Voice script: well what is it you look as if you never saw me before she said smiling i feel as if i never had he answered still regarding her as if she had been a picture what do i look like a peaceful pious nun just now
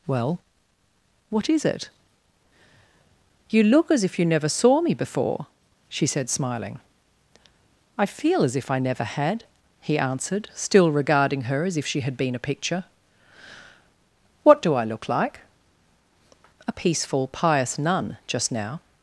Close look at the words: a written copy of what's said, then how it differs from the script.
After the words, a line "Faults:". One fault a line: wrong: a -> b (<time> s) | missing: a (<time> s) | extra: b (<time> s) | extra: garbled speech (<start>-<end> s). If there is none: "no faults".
well what is it you look as if you never saw me before she said smiling i feel as if i never had he answered still regarding her as if she had been a picture what do i look like a peaceful pious nun just now
Faults:
no faults